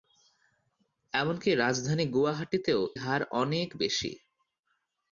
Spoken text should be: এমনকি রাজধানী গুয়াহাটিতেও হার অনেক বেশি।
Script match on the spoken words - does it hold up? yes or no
yes